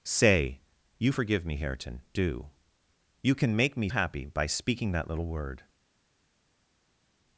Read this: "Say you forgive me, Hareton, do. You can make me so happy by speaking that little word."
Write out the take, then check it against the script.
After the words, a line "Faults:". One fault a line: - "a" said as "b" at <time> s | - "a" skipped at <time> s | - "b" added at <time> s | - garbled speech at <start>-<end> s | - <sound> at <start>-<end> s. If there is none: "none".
"Say you forgive me, Hareton, do. You can make me happy by speaking that little word."
Faults:
- "so" skipped at 3.9 s